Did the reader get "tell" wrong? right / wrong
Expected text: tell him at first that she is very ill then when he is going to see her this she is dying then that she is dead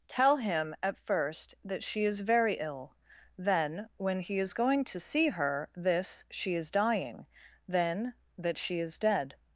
right